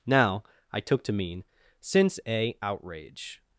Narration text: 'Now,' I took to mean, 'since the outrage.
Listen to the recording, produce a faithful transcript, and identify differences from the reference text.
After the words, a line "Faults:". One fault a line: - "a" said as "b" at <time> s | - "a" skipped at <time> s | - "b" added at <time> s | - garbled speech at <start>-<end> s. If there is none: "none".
'Now,' I took to mean, 'since a outrage.
Faults:
- "the" said as "a" at 2.3 s